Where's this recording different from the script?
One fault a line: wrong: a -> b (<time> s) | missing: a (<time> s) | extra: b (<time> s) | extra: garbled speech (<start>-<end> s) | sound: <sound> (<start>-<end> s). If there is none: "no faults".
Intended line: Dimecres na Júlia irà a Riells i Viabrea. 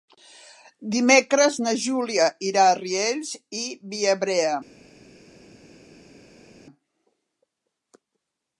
no faults